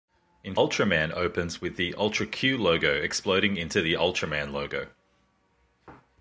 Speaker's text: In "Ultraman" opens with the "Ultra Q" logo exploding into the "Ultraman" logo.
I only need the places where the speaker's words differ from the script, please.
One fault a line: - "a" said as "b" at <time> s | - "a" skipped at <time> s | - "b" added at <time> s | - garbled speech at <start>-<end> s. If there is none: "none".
none